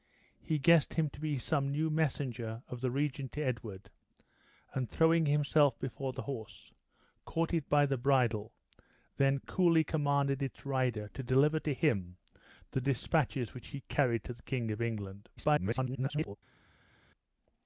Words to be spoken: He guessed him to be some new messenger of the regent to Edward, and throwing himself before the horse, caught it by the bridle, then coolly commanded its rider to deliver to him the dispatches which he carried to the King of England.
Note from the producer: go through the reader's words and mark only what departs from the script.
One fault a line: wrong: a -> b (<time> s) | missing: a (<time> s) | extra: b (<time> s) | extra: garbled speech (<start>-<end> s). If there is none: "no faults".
extra: garbled speech (15.4-16.4 s)